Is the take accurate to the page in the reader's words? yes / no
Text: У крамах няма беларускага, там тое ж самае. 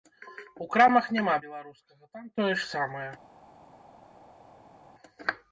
yes